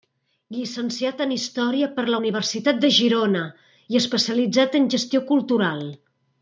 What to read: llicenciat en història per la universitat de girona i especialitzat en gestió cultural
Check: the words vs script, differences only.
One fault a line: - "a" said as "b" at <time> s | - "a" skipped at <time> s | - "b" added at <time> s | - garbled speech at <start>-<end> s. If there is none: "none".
none